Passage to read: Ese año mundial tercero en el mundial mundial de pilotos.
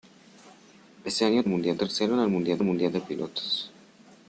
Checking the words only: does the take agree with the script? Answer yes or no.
yes